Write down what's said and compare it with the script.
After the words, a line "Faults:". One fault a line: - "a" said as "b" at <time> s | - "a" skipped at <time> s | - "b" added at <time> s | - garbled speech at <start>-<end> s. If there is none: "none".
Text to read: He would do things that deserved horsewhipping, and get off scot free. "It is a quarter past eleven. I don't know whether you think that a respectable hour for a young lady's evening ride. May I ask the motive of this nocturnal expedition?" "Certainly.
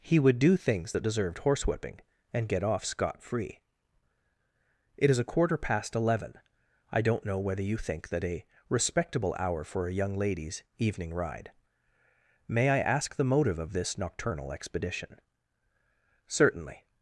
He would do things that deserved horsewhipping, and get off scot free. "It is a quarter past eleven. I don't know whether you think that a respectable hour for a young lady's evening ride. May I ask the motive of this nocturnal expedition?" "Certainly.
Faults:
none